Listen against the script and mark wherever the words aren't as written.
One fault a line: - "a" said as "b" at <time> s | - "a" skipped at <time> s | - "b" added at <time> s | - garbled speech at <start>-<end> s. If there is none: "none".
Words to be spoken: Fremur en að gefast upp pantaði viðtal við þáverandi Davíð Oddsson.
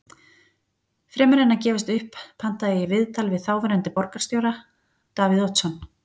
- "ég" added at 2.8 s
- "borgarstjóra" added at 4.0 s